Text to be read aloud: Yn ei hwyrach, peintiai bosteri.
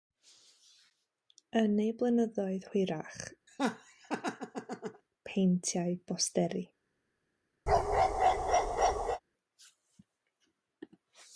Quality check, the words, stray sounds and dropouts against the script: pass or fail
fail